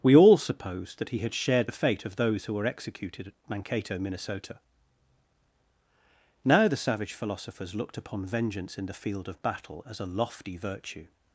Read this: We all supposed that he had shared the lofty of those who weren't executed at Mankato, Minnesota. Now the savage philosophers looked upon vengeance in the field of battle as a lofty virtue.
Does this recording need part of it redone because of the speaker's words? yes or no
yes